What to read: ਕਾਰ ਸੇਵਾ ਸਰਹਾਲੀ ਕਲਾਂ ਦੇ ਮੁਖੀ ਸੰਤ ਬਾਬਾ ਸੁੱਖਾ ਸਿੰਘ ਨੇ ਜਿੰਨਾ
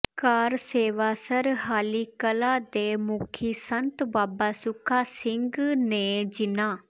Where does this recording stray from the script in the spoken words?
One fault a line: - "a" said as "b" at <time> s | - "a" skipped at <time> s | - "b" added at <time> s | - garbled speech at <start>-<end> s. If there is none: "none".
none